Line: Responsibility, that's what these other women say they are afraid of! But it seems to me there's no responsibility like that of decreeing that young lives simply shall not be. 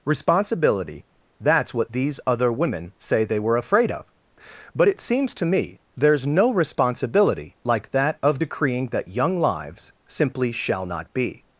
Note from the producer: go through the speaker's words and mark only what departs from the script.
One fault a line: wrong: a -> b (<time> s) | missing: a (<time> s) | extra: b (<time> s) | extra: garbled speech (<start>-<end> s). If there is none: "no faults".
wrong: are -> were (3.4 s)